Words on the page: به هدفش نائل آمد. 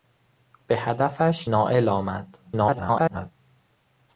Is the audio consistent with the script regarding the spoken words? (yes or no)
no